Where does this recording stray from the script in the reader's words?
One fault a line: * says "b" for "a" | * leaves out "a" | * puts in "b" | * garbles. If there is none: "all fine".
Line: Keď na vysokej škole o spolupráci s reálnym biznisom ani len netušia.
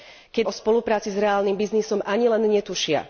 * leaves out "na vysokej škole"